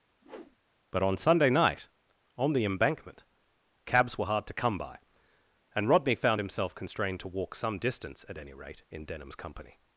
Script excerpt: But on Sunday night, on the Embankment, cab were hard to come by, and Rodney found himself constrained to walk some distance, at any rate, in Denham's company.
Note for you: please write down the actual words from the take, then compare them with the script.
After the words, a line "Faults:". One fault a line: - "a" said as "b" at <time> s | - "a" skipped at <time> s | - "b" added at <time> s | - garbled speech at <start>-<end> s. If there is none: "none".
But on Sunday night, on the Embankment, cabs were hard to come by, and Rodney found himself constrained to walk some distance, at any rate, in Denham's company.
Faults:
- "cab" said as "cabs" at 3.8 s